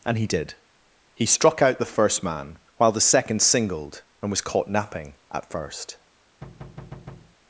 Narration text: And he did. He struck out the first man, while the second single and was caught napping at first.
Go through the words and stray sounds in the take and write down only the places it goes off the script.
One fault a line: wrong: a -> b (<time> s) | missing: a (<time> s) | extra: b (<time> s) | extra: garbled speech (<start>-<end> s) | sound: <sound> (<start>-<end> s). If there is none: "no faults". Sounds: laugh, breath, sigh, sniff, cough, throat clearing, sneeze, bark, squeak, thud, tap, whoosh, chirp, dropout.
wrong: single -> singled (3.4 s)
sound: thud (6.4-7.4 s)